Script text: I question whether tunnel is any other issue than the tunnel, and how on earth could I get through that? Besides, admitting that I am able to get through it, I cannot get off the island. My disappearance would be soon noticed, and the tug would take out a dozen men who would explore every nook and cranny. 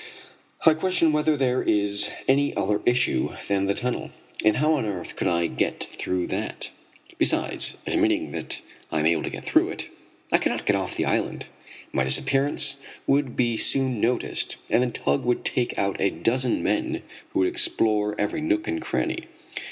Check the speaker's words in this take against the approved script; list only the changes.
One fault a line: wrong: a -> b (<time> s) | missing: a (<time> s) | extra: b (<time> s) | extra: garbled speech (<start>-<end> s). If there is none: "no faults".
wrong: tunnel -> there (1.4 s)